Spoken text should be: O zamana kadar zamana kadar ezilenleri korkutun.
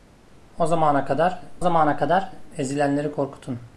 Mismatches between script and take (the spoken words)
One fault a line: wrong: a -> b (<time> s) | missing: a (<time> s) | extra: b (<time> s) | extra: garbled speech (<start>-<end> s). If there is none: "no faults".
no faults